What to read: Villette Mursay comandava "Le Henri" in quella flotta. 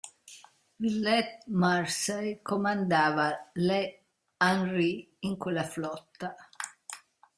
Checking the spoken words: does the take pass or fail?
pass